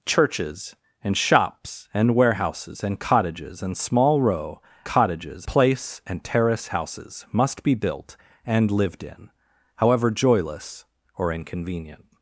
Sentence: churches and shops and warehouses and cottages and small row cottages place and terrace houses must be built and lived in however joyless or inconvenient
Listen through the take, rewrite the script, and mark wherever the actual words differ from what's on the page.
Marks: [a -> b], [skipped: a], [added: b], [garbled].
churches and shops and warehouses and cottages and small row cottages place and terrace houses must be built and lived in however joyless or inconvenient